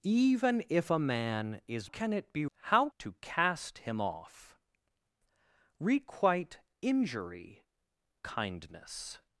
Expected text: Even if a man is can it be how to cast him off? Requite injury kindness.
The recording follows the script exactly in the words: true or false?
true